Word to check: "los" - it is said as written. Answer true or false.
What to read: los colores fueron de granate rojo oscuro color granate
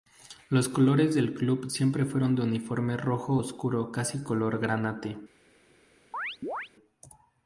true